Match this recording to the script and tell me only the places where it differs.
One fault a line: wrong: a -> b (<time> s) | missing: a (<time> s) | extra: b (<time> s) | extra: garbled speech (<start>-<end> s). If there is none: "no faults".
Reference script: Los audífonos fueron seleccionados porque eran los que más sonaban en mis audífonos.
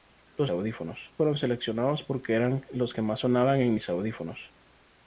no faults